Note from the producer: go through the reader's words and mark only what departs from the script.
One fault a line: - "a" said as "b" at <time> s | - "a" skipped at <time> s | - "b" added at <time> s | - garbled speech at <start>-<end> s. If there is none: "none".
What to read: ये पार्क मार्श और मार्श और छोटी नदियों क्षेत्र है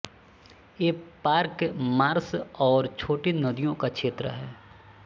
- "मार्श और" skipped at 2.9 s
- "का" added at 3.8 s